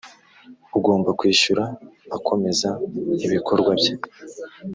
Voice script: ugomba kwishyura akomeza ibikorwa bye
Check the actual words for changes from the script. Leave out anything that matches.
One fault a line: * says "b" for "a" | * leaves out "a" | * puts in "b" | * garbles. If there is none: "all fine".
all fine